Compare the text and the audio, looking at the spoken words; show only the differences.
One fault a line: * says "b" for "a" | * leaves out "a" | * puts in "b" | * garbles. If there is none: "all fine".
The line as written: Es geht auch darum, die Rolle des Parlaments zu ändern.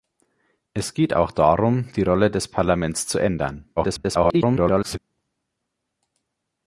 * garbles